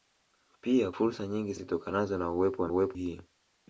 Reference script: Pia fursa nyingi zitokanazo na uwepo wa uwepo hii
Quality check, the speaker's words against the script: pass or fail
pass